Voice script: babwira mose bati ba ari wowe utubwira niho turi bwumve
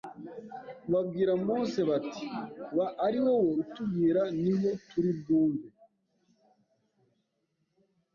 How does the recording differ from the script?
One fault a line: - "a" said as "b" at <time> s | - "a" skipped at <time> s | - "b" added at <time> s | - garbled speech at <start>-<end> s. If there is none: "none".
none